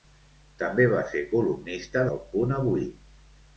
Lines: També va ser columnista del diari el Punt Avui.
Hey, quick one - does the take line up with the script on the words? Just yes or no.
no